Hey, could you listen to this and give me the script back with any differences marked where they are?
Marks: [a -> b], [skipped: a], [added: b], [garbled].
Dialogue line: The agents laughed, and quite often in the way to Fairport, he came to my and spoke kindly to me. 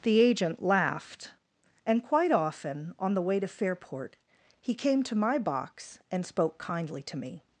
The [agents -> agent] laughed, and quite often [in -> on] the way to Fairport, he came to my [added: box] and spoke kindly to me.